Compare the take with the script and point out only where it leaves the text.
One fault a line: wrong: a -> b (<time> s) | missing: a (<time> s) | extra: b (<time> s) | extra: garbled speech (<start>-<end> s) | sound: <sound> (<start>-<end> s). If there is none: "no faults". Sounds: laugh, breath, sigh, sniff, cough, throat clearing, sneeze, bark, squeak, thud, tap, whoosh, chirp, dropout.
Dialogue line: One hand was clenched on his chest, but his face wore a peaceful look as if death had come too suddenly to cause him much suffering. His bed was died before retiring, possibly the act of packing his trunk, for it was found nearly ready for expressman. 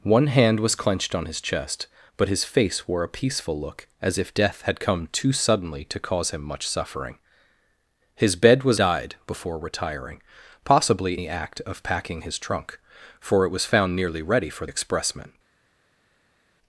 no faults